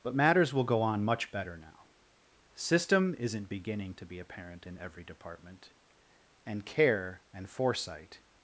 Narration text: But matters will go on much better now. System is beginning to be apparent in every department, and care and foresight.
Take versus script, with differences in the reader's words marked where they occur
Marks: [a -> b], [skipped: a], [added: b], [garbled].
But matters will go on much better now. System [is -> isn't] beginning to be apparent in every department, and care and foresight.